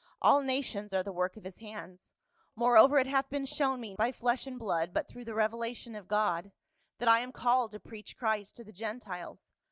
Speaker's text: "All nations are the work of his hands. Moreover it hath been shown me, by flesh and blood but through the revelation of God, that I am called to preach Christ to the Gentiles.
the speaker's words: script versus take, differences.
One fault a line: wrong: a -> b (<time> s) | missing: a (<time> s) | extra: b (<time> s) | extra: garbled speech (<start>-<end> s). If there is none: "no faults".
no faults